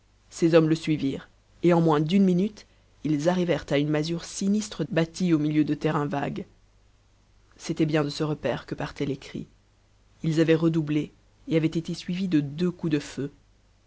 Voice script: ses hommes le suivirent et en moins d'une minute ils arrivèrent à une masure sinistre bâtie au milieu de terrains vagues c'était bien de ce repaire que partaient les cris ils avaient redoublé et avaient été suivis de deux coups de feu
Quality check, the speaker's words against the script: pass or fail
pass